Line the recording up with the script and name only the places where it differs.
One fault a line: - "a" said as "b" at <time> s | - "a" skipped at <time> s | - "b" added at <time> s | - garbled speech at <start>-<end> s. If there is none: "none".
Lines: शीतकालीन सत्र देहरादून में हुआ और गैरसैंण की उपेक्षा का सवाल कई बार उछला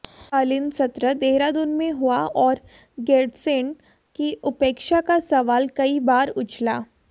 none